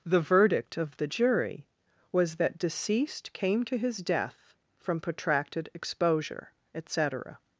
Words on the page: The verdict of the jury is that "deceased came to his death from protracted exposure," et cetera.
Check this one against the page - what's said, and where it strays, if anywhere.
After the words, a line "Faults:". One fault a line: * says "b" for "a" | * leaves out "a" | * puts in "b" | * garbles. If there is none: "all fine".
The verdict of the jury was that "deceased came to his death from protracted exposure," et cetera.
Faults:
* says "was" for "is"